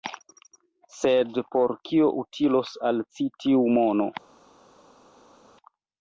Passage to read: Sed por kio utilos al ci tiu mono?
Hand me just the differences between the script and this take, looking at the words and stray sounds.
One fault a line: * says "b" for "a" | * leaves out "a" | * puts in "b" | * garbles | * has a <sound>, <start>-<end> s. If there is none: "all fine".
all fine